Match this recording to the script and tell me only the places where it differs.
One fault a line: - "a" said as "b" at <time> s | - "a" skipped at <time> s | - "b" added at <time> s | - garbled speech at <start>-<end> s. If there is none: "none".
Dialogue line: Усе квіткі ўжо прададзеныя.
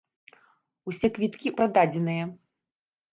- "ўжо" skipped at 1.5 s